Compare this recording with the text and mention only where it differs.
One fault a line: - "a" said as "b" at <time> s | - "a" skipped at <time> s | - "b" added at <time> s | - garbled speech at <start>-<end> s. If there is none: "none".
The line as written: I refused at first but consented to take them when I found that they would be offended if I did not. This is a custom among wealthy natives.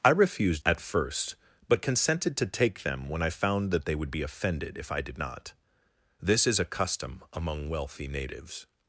none